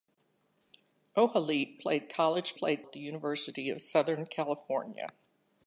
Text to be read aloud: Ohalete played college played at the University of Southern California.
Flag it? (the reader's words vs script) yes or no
no